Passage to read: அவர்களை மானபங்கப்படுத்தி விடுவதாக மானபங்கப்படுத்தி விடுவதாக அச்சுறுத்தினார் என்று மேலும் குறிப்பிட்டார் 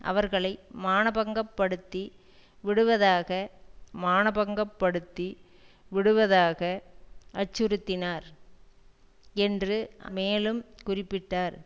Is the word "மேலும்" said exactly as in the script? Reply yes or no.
yes